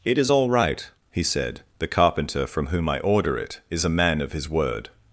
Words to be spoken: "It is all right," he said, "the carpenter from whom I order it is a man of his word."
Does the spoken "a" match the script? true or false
true